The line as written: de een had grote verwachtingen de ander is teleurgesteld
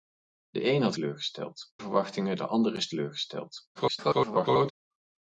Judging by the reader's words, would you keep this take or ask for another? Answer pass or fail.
fail